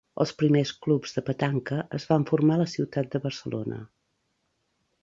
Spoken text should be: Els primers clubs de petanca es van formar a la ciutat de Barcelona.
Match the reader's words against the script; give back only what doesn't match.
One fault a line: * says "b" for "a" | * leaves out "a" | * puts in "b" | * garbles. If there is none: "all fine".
all fine